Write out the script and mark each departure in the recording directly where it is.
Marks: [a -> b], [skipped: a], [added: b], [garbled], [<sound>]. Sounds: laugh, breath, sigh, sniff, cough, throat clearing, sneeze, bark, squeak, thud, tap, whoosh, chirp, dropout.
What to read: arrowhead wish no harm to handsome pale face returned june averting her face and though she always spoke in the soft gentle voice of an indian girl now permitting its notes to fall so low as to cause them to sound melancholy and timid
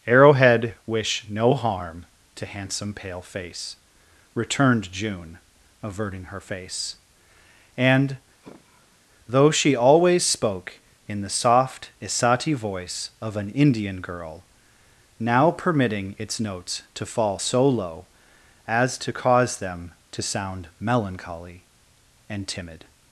arrowhead wish no harm to handsome pale face returned june averting her face and [sigh] though she always spoke in the soft [gentle -> isati] voice of an indian girl now permitting its notes to fall so low as to cause them to sound melancholy and timid